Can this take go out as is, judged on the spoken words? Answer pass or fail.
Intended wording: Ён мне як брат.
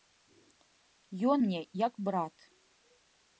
pass